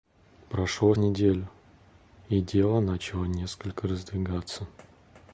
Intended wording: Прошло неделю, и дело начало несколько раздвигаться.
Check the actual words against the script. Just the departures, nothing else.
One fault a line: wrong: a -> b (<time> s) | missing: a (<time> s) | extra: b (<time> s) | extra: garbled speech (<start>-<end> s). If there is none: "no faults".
no faults